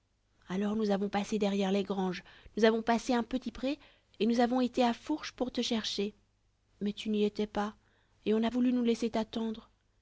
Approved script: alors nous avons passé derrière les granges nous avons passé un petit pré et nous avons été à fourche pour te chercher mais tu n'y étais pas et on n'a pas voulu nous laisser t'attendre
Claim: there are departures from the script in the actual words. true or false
true